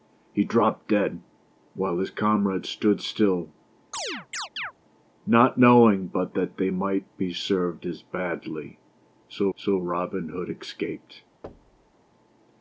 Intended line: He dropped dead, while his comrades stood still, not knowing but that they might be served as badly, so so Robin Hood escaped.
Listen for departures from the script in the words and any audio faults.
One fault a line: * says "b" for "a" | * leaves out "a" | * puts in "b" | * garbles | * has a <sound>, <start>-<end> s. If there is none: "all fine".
* has a chirp, 3.9-4.7 s
* has a thud, 11.4-11.9 s